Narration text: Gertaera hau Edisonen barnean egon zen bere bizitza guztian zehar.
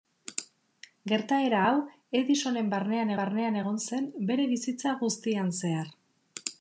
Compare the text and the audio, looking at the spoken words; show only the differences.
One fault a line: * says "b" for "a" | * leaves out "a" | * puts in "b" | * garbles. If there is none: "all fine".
* puts in "barnean"